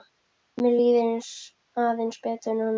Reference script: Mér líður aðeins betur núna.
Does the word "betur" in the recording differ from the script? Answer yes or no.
no